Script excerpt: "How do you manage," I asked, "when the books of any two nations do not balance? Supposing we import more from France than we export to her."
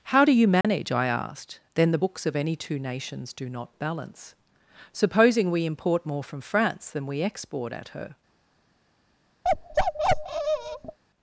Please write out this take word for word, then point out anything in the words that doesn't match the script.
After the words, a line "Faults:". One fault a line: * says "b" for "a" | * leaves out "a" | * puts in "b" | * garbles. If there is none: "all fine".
"How do you manage," I asked, "then the books of any two nations do not balance? Supposing we import more from France than we export at her."
Faults:
* says "then" for "when"
* says "at" for "to"